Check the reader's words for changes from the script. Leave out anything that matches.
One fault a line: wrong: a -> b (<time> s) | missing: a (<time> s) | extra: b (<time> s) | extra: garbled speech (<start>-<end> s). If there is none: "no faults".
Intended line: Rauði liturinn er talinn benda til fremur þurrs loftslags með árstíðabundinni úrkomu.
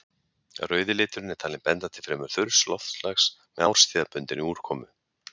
no faults